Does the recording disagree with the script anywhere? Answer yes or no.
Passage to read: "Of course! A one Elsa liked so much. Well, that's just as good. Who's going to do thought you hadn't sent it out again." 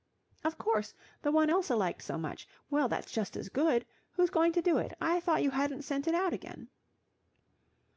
yes